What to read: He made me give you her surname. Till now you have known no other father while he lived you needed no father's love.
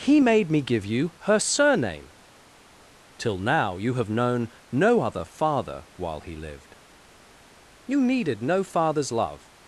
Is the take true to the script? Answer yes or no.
yes